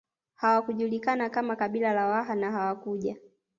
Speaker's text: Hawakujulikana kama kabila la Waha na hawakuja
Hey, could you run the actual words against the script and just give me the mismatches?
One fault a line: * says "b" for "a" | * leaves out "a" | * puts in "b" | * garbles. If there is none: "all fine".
all fine